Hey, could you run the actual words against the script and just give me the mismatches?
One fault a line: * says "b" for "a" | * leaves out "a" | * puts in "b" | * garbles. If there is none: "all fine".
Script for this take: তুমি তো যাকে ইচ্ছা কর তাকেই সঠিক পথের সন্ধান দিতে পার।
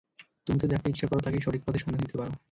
all fine